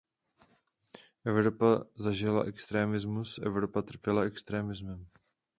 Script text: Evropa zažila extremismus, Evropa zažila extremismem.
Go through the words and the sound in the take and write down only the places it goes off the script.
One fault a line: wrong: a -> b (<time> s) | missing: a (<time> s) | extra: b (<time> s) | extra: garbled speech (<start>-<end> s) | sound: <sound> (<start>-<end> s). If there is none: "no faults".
wrong: zažila -> trpěla (3.8 s)